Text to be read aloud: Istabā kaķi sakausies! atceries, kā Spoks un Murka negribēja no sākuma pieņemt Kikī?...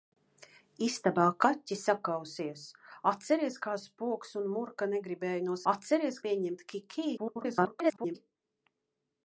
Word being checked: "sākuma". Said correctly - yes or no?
no